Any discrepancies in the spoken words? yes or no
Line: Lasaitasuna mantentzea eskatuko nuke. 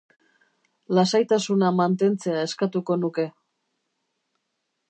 no